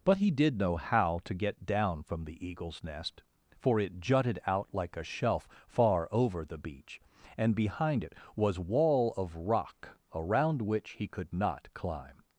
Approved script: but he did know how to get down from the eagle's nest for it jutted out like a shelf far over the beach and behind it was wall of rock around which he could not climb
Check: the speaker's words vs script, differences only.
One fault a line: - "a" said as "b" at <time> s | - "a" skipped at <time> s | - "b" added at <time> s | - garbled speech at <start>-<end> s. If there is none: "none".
none